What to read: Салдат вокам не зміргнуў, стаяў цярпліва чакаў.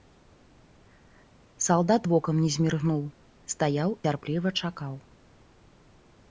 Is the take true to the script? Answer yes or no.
yes